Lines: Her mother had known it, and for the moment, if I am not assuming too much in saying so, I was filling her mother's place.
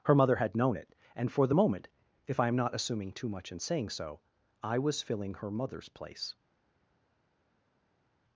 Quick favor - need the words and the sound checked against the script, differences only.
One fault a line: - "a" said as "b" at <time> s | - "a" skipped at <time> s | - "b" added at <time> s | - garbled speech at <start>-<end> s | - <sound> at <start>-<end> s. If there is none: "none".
none